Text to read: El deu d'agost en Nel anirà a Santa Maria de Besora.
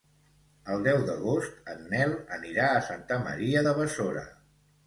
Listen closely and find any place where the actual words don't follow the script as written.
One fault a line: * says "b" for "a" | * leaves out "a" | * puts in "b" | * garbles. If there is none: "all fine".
all fine